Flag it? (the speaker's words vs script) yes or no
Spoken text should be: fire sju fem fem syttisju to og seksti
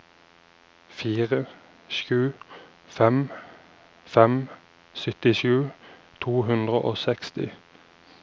yes